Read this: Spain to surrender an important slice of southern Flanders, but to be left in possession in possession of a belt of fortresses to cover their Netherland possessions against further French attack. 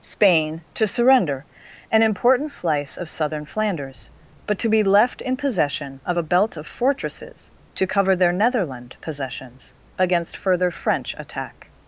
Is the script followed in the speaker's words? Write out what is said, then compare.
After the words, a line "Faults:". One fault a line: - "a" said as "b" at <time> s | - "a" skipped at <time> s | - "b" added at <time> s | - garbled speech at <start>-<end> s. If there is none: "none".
Spain to surrender an important slice of southern Flanders, but to be left in possession of a belt of fortresses to cover their Netherland possessions against further French attack.
Faults:
- "in possession" skipped at 6.0 s